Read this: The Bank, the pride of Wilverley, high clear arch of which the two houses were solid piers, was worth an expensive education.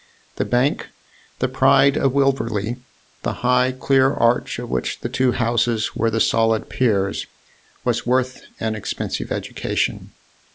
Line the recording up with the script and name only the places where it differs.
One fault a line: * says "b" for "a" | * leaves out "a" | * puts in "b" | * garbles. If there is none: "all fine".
* puts in "the"
* puts in "the"